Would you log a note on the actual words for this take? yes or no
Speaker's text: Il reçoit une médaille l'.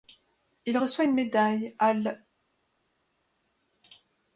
yes